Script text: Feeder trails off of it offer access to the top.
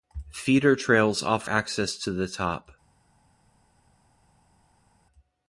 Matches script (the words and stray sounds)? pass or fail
fail